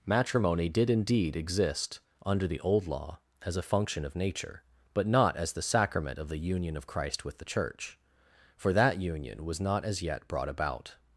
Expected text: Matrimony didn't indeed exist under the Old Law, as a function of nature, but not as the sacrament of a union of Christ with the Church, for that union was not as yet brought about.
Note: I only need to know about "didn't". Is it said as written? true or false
false